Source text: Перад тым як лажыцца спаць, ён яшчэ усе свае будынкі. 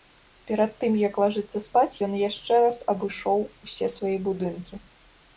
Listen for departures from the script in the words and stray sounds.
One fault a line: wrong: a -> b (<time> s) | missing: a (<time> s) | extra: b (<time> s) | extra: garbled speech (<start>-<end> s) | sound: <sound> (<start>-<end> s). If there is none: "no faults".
extra: раз абышоў (2.6 s)